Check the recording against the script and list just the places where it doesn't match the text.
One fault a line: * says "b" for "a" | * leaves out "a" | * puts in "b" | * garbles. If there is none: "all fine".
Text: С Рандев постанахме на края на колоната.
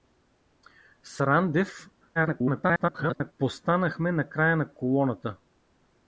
* garbles